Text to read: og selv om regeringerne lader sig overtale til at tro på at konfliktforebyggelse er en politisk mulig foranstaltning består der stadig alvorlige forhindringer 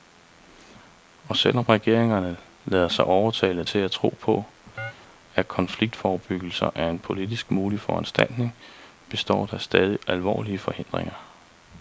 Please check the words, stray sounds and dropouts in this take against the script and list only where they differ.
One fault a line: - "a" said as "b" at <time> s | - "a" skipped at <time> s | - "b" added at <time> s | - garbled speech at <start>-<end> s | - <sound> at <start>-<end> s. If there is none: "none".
- chirp at 4.8-4.9 s